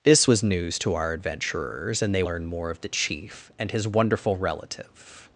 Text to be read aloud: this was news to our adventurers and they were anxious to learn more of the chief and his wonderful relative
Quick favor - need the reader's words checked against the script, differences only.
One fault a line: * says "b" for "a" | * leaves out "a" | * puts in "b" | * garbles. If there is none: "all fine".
* leaves out "were anxious to"